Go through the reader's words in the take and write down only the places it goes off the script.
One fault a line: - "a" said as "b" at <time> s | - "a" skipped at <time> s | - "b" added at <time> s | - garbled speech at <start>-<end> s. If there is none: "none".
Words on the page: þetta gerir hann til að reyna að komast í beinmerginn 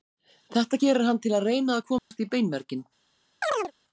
none